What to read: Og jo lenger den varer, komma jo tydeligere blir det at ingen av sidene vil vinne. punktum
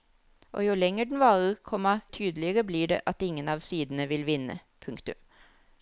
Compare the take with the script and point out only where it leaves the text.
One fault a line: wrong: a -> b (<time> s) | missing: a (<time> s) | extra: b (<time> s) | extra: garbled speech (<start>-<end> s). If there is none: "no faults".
missing: jo (2.0 s)